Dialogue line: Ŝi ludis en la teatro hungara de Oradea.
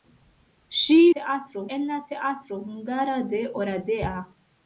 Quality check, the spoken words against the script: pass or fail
fail